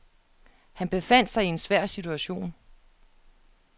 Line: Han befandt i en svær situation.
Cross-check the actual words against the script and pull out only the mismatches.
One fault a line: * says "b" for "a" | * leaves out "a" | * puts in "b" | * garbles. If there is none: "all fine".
* puts in "sig"